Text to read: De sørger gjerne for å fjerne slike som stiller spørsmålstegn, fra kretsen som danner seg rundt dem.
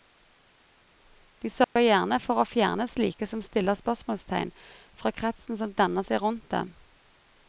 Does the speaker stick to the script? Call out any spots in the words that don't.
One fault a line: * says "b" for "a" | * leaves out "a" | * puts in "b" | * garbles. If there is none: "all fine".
all fine